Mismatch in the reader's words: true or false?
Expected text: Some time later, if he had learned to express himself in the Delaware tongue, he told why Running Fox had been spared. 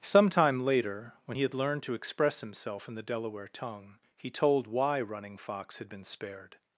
true